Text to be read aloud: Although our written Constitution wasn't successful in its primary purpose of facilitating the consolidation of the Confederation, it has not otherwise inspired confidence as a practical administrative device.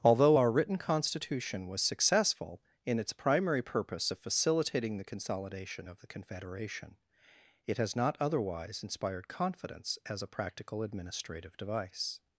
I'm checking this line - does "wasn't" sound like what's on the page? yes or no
no